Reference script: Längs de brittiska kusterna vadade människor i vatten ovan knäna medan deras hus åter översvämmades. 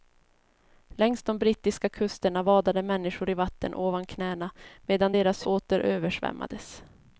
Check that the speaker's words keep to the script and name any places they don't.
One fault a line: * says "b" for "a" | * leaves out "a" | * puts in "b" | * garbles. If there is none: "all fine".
* leaves out "hus"